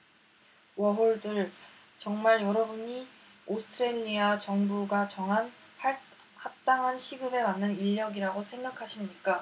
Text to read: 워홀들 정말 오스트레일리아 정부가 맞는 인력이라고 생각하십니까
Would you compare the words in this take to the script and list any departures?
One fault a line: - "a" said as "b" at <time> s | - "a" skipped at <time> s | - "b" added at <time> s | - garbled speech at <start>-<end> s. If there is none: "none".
- "여러분이" added at 2.4 s
- "정한 합당한 시급에" added at 5.1 s